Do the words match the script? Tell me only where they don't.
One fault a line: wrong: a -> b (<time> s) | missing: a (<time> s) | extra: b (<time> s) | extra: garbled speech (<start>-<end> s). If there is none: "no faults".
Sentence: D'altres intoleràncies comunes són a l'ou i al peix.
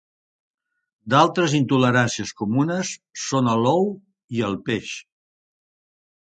no faults